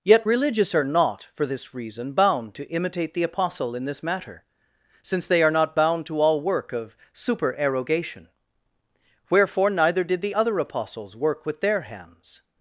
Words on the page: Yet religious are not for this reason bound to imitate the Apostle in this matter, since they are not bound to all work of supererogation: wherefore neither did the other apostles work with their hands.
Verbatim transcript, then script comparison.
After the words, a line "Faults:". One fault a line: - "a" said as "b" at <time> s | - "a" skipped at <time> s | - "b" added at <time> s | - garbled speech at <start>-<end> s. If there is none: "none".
Yet religious are not for this reason bound to imitate the Apostle in this matter, since they are not bound to all work of supererogation: wherefore neither did the other apostles work with their hands.
Faults:
none